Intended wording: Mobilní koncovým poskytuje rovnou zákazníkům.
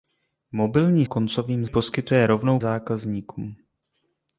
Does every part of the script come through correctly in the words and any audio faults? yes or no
yes